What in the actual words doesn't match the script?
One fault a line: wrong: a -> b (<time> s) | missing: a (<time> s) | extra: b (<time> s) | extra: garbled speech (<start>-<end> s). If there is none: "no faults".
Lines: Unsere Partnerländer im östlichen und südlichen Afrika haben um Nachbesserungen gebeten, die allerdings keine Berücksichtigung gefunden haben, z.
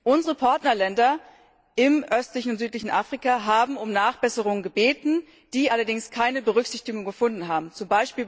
no faults